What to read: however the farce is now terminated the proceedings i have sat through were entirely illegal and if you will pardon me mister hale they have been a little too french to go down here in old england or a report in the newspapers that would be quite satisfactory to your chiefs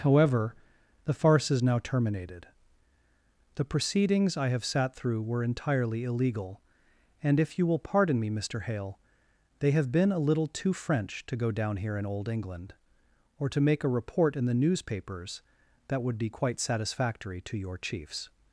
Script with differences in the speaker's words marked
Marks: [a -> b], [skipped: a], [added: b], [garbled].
however the farce is now terminated the proceedings i have sat through were entirely illegal and if you will pardon me mister hale they have been a little too french to go down here in old england or [added: to make] a report in the newspapers that would be quite satisfactory to your chiefs